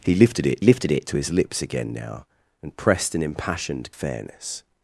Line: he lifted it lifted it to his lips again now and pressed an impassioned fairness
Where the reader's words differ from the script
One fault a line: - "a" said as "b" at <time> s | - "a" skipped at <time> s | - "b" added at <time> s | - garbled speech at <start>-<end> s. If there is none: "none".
none